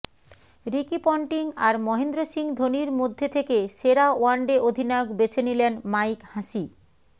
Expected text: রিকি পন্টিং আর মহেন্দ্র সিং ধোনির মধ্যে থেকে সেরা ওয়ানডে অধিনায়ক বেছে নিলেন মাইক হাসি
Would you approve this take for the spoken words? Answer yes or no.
yes